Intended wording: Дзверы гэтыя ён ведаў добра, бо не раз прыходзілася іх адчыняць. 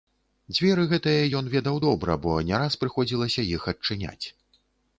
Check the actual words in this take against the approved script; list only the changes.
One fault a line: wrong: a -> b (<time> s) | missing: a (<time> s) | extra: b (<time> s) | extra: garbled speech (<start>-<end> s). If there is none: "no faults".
no faults